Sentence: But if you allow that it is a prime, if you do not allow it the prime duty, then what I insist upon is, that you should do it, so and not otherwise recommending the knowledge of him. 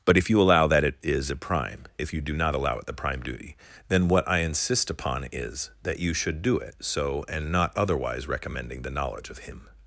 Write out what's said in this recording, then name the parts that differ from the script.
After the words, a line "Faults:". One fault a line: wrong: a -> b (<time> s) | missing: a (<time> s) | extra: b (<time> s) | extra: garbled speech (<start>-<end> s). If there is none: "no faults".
But if you allow that it is a prime, if you do not allow it the prime duty, then what I insist upon is, that you should do it, so and not otherwise recommending the knowledge of him.
Faults:
no faults